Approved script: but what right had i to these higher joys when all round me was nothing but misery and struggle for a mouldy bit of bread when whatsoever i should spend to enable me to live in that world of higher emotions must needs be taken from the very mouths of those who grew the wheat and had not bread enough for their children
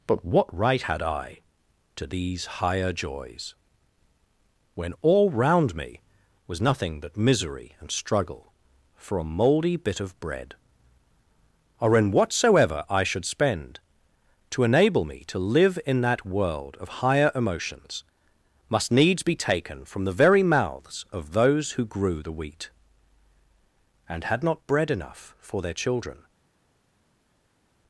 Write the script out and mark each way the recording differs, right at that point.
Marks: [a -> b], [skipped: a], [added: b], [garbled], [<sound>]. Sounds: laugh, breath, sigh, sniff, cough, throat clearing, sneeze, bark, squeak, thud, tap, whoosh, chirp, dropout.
but what right had i to these higher joys when all round me was nothing but misery and struggle for a mouldy bit of bread [when -> or in] whatsoever i should spend to enable me to live in that world of higher emotions must needs be taken from the very mouths of those who grew the wheat and had not bread enough for their children